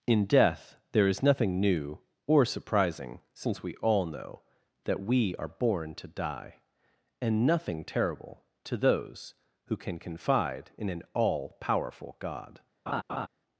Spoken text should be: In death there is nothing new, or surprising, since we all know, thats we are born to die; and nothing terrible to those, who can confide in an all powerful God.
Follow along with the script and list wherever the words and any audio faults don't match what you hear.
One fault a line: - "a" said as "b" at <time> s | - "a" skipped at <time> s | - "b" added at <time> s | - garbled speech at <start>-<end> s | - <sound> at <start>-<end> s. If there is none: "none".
- "thats" said as "that" at 4.8 s
- laugh at 12.9-13.3 s